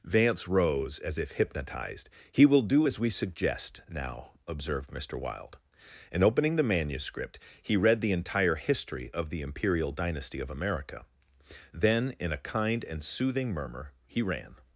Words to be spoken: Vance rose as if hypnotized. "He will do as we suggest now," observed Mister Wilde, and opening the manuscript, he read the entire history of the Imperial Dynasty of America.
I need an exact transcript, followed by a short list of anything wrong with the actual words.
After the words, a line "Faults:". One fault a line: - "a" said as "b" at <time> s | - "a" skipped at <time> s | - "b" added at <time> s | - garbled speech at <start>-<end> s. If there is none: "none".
Vance rose as if hypnotized. "He will do as we suggest now," observed Mister Wilde, and opening the manuscript, he read the entire history of the Imperial Dynasty of America. Then in a kind and soothing murmur he ran
Faults:
- "Then in a kind and soothing murmur he ran" added at 11.7 s